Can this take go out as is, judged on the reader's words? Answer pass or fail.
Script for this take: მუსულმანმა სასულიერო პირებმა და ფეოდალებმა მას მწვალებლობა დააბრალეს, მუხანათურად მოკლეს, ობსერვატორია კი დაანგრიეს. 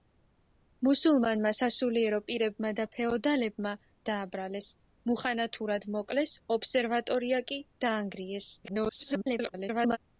fail